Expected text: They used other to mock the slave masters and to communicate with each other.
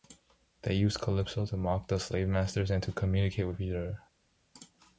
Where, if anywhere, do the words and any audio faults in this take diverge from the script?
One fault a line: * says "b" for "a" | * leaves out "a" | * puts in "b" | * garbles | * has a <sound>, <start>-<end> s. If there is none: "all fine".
* says "calypso" for "other"